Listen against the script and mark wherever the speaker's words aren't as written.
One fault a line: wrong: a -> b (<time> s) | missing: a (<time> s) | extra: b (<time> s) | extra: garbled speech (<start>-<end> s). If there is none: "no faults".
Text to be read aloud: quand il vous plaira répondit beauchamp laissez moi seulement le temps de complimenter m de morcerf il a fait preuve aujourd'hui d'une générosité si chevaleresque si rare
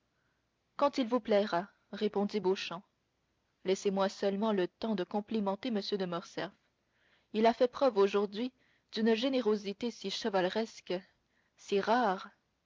no faults